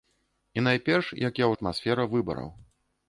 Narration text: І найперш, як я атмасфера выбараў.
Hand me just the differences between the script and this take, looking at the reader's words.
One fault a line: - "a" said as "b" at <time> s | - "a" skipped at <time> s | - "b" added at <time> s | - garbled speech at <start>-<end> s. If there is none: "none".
none